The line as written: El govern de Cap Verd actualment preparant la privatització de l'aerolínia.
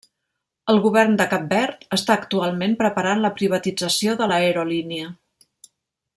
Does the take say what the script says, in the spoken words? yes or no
no